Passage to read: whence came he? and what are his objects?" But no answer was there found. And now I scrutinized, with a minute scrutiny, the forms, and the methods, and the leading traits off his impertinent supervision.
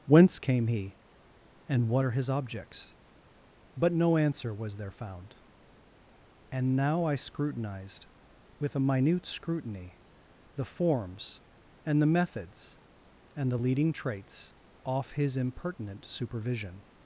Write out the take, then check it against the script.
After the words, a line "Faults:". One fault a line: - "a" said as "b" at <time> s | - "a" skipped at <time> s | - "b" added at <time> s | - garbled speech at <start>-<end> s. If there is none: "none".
whence came he? and what are his objects?" But no answer was there found. And now I scrutinized, with a minute scrutiny, the forms, and the methods, and the leading traits off his impertinent supervision.
Faults:
none